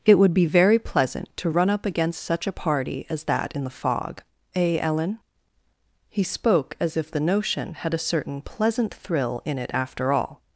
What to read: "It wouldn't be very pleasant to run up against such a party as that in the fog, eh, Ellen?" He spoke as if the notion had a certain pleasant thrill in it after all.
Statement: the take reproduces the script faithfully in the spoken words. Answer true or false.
false